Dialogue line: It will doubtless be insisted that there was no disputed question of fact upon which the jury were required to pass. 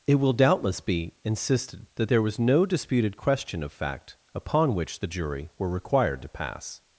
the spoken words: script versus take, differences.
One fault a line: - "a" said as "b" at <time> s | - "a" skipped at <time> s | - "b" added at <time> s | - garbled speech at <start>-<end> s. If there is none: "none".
none